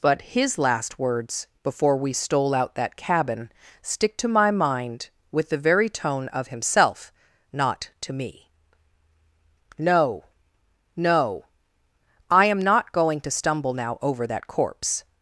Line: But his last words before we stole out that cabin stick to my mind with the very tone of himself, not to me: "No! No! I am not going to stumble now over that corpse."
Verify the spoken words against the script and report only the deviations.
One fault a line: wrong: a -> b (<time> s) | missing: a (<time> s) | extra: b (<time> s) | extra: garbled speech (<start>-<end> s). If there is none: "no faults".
no faults